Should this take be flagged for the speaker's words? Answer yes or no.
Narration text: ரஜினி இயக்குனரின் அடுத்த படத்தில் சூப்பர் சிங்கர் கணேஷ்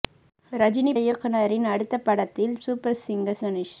no